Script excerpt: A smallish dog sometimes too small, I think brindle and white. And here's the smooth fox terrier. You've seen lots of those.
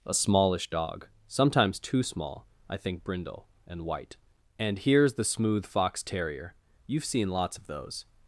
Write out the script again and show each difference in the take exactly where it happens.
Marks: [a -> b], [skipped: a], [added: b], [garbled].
A smallish dog sometimes too small, I think brindle and white. And here's the smooth fox terrier. You've seen lots of those.